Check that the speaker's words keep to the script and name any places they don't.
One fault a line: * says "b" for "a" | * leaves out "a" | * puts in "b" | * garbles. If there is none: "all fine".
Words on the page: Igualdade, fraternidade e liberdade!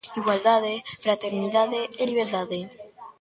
all fine